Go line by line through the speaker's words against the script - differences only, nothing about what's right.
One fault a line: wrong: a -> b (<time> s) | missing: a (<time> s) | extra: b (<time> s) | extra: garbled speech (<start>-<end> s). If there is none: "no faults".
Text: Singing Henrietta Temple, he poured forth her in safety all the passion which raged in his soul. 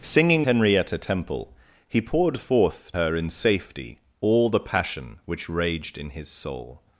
no faults